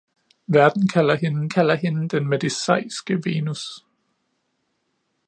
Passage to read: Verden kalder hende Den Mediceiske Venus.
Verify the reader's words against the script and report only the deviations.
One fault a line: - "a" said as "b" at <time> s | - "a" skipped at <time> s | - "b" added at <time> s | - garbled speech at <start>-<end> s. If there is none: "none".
- "kalder hende" added at 1.5 s